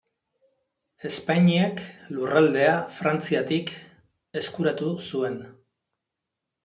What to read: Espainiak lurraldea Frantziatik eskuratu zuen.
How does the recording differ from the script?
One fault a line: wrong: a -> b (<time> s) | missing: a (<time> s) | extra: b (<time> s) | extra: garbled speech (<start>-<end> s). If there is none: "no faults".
no faults